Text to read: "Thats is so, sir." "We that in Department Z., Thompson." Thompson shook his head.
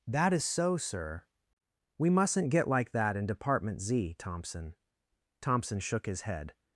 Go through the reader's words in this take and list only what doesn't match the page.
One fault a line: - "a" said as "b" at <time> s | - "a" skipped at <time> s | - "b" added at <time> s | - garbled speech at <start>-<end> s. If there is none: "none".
- "Thats" said as "That" at 0.1 s
- "mustn't get like" added at 2.1 s